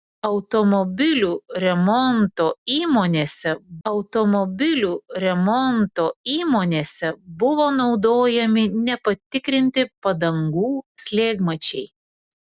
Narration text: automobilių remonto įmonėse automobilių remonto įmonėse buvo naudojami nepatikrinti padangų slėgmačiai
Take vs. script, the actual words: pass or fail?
pass